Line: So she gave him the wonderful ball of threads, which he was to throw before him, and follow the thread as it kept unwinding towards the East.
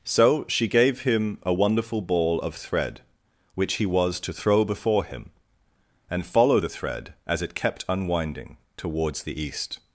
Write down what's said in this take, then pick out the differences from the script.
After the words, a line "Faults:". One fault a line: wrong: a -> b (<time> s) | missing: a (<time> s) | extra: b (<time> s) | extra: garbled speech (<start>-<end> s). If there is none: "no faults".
So she gave him a wonderful ball of thread, which he was to throw before him, and follow the thread as it kept unwinding towards the East.
Faults:
wrong: the -> a (1.4 s)
wrong: threads -> thread (2.5 s)